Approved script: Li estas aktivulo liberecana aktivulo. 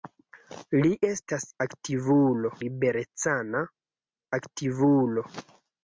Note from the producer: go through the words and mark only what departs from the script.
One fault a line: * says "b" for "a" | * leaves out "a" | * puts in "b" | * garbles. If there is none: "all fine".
all fine